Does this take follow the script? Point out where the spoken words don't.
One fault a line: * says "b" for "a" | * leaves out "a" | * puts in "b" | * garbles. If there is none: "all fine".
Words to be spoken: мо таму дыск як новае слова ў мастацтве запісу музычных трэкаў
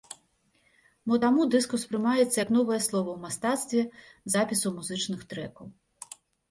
* puts in "успрымаецца"